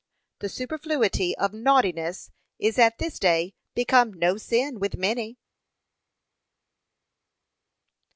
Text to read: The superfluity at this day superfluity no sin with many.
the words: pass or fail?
fail